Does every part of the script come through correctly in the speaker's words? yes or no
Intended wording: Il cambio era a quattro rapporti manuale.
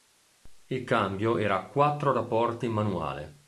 yes